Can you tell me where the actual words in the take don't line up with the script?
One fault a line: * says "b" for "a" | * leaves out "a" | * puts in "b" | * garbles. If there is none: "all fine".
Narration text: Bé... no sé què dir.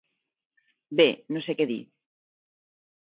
all fine